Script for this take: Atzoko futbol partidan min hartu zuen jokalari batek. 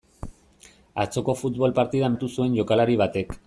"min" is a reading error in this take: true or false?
true